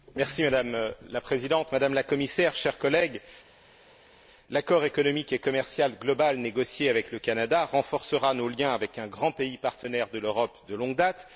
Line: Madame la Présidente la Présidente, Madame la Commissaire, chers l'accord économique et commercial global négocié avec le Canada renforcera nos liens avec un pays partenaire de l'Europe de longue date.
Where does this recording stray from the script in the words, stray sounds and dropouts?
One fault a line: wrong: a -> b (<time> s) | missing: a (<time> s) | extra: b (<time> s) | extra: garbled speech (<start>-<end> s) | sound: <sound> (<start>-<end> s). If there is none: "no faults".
missing: la Présidente (1.7 s)
extra: collègues (2.8 s)
extra: grand (9.1 s)